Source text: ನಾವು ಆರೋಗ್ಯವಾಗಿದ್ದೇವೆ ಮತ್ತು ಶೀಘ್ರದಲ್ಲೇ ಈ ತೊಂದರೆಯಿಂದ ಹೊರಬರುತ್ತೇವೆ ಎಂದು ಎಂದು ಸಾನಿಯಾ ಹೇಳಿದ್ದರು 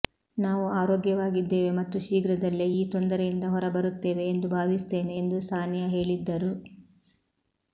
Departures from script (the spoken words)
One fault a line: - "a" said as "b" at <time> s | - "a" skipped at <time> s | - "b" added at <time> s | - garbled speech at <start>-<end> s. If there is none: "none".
- "ಭಾವಿಸುತ್ತೇನೆ" added at 4.5 s